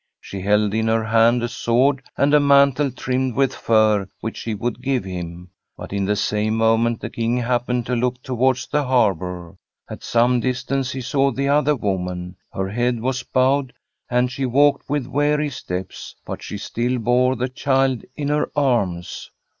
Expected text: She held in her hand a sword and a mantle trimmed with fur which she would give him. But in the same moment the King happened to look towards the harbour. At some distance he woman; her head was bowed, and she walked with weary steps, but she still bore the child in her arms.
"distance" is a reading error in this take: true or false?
false